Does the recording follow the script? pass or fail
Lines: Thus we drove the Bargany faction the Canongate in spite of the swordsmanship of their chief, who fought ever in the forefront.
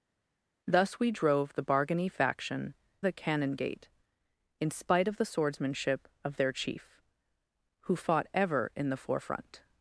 pass